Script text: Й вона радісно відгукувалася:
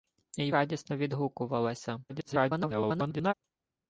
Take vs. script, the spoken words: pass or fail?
fail